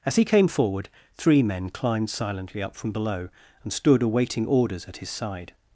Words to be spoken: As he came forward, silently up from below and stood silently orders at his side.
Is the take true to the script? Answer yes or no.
no